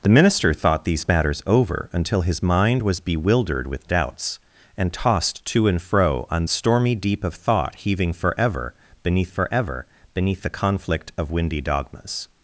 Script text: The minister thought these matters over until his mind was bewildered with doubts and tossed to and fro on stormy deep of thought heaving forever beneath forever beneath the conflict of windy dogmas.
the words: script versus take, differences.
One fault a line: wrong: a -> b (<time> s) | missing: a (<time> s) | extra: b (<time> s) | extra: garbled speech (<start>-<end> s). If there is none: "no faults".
no faults